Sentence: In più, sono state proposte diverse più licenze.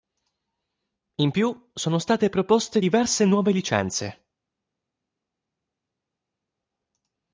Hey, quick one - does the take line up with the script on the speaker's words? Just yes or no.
no